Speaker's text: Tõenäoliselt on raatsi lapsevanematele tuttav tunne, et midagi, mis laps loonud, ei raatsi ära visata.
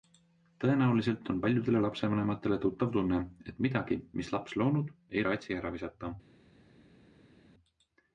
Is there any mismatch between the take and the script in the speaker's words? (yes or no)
yes